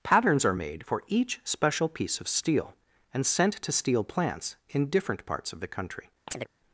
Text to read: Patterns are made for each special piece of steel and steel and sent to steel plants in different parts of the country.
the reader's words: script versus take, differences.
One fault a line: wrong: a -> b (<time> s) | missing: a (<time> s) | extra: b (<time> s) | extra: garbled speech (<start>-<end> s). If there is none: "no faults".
missing: steel and (3.2 s)